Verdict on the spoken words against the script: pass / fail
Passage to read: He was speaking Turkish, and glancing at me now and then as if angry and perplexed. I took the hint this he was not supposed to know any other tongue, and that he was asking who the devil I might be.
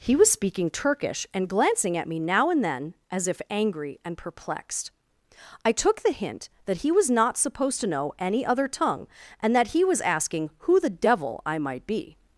fail